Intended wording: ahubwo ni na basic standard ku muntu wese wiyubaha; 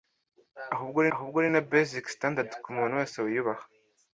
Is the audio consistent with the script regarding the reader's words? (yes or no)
no